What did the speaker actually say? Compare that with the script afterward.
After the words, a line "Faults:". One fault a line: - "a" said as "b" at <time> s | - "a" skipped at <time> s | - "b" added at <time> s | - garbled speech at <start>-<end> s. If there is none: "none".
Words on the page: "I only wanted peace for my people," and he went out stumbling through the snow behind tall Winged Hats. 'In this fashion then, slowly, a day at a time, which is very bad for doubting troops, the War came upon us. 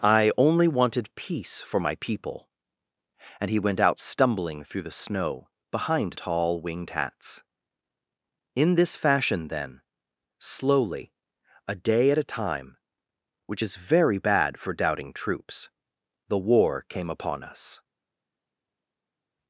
"I only wanted peace for my people," and he went out stumbling through the snow behind tall Winged Hats. 'In this fashion then, slowly, a day at a time, which is very bad for doubting troops, the War came upon us.
Faults:
none